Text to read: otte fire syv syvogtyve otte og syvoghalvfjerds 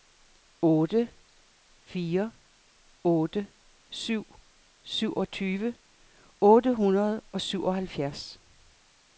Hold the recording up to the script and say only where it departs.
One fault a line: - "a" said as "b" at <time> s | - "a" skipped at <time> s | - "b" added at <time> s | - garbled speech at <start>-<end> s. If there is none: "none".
- "otte" added at 3.0 s
- "hundrede" added at 6.8 s